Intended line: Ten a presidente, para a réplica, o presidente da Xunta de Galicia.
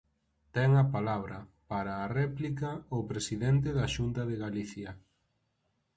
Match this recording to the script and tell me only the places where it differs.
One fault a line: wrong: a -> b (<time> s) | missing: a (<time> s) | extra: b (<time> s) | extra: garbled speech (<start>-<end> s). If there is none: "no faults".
wrong: presidente -> palabra (0.9 s)